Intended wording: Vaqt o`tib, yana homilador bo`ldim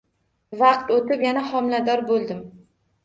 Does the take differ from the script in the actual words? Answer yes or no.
no